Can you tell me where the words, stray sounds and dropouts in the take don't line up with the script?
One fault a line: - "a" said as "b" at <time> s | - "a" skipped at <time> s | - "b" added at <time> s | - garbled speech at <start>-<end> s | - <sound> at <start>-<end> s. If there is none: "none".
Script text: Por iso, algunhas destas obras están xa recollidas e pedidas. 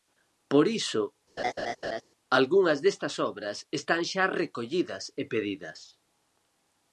- laugh at 1.4-2.0 s